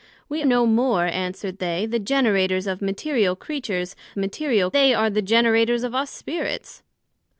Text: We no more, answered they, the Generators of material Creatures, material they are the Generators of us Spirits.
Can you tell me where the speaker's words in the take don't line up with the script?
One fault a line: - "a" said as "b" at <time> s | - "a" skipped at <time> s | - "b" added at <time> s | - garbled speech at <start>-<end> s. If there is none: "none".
none